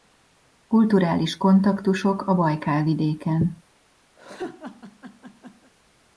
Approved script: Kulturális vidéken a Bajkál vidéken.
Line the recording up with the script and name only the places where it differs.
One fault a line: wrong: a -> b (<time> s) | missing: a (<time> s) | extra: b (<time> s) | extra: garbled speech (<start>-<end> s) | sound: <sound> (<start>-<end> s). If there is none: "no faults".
wrong: vidéken -> kontaktusok (1.4 s)
sound: laugh (4.2-5.7 s)